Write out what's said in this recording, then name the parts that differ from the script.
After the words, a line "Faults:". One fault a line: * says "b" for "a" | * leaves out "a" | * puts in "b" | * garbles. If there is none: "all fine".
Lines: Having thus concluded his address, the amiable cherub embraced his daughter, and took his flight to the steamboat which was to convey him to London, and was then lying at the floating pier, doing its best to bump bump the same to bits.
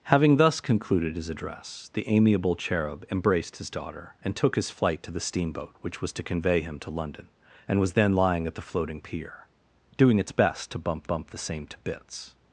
Having thus concluded his address, the amiable cherub embraced his daughter, and took his flight to the steamboat which was to convey him to London, and was then lying at the floating pier, doing its best to bump bump the same to bits.
Faults:
all fine